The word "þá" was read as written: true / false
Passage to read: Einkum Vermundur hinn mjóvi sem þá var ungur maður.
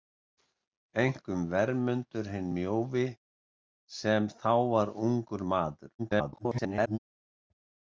true